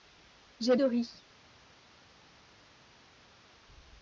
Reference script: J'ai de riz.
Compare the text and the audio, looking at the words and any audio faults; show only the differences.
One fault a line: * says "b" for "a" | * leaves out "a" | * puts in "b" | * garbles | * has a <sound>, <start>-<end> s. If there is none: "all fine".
all fine